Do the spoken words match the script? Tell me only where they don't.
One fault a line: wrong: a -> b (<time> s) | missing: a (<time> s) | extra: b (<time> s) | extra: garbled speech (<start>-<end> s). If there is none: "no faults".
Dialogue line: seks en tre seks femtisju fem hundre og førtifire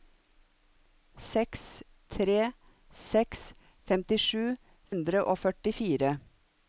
missing: en (1.6 s)
missing: fem (4.5 s)